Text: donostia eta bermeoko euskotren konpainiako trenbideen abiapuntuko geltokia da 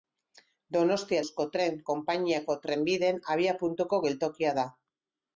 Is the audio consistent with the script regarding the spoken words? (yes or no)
no